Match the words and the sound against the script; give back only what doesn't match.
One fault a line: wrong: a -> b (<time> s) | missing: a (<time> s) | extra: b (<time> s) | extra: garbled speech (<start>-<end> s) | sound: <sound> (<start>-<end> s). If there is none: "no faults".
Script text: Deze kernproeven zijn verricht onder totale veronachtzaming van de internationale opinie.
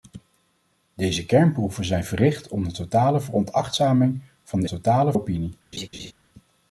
wrong: internationale -> totale (4.7 s)
sound: laugh (5.7-6.1 s)